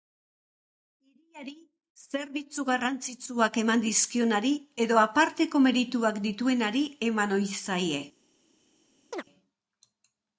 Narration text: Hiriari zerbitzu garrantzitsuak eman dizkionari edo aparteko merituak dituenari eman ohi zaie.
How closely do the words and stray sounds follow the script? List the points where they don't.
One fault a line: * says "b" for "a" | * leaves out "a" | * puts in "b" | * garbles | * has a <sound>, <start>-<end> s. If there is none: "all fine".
* has a chirp, 9.1-9.2 s